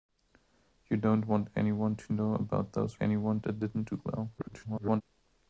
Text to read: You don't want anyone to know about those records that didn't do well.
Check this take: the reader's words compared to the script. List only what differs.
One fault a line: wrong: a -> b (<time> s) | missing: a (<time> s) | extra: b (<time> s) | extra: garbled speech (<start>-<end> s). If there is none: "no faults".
wrong: records -> anyone (3.0 s)
extra: garbled speech (4.4-5.0 s)